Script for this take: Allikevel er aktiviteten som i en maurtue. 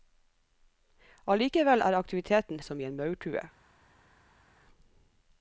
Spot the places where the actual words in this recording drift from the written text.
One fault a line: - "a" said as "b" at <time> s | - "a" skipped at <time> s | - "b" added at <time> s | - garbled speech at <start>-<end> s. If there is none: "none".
none